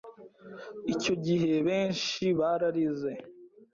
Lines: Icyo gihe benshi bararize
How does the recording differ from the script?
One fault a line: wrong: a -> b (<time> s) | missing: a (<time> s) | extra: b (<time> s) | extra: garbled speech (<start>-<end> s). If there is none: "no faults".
no faults